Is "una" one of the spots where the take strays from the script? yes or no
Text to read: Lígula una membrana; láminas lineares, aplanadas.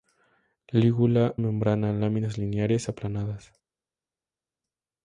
yes